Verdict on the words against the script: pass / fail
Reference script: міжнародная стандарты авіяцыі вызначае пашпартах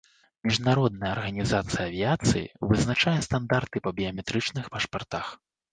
fail